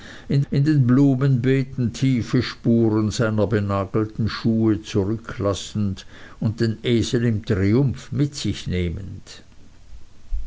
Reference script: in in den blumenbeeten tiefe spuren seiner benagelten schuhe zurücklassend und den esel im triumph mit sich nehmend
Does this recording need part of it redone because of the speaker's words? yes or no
no